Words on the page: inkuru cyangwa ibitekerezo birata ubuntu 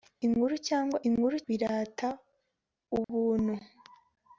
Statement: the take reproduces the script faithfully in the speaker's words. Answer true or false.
false